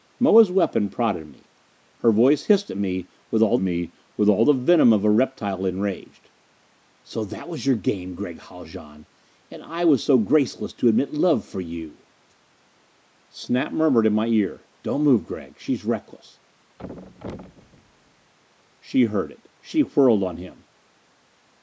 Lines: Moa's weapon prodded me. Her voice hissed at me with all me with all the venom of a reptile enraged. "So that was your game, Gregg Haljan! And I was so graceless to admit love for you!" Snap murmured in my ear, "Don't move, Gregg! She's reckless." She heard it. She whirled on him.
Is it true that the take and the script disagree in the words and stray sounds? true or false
true